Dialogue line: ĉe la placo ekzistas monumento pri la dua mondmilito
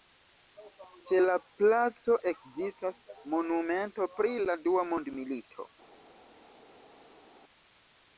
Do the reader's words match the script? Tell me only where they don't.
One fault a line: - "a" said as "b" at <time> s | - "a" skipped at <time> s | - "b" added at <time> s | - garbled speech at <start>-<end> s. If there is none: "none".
none